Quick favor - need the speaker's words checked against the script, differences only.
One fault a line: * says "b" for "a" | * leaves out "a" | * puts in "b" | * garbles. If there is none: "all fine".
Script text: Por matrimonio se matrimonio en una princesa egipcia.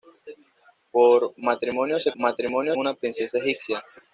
all fine